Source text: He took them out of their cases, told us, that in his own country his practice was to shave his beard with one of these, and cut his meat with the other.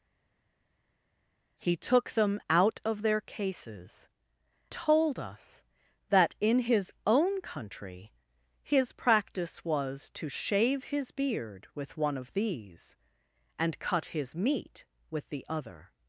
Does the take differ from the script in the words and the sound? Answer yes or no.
no